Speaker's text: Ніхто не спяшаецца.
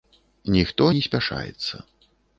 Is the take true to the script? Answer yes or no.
yes